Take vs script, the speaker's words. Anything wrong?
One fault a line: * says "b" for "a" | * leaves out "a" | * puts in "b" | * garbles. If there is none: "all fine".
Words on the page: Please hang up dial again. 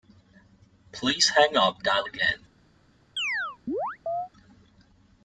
all fine